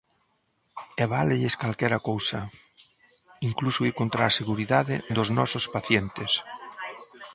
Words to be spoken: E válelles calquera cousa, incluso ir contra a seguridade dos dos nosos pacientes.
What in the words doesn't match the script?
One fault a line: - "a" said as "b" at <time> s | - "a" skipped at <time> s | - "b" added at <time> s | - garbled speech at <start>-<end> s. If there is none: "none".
- "dos" skipped at 5.3 s